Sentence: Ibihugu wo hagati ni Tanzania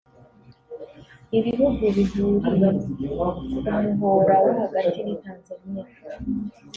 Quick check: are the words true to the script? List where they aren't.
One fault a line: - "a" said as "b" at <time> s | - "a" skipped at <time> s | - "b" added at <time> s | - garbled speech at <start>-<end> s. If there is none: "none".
- "bihuriye ku muhora" added at 1.9 s